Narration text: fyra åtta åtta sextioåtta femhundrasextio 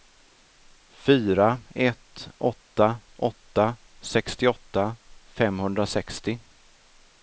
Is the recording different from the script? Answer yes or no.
yes